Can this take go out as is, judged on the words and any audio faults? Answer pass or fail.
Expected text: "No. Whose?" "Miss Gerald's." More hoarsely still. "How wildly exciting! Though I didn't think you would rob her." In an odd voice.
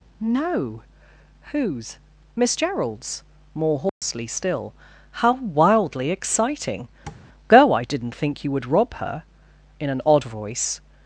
fail